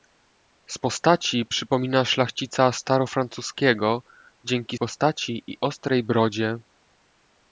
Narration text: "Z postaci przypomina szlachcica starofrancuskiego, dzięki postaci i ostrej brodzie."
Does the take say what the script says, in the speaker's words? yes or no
yes